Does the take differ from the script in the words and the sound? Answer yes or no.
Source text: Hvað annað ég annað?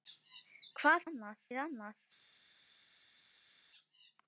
no